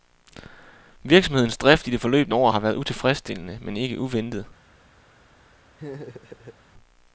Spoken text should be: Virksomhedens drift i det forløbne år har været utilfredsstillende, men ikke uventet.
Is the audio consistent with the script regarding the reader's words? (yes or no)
yes